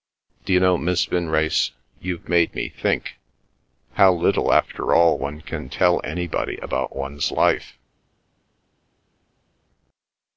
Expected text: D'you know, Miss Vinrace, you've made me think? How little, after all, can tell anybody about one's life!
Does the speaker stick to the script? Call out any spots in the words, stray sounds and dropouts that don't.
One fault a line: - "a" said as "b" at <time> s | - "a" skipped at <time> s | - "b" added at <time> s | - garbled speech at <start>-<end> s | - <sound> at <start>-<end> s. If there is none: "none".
- "one" added at 5.2 s